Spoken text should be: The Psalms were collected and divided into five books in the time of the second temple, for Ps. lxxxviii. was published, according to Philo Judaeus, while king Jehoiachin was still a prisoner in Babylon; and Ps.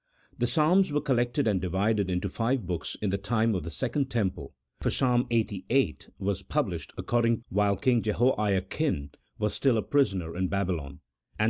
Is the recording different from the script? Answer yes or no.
yes